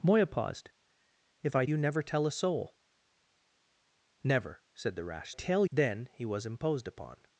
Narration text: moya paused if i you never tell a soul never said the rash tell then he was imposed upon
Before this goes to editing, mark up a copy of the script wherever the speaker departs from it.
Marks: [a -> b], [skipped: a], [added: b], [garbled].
moya paused if i you never tell a soul never said the rash tell then he was imposed upon